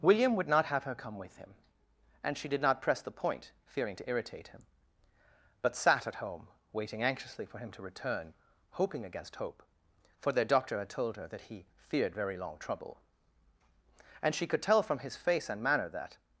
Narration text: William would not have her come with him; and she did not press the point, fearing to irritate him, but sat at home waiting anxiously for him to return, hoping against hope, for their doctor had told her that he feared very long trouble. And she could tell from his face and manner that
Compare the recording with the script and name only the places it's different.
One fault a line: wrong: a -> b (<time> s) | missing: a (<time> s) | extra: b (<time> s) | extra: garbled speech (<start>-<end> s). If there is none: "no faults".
no faults